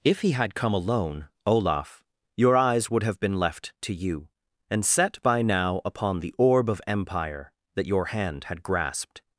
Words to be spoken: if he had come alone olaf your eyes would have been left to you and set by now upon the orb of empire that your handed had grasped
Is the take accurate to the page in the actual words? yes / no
no